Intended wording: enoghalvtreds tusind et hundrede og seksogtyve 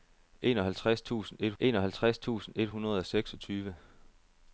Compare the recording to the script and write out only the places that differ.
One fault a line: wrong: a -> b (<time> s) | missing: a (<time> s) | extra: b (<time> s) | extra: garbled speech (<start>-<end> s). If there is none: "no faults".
extra: enoghalvtreds tusind et (1.6 s)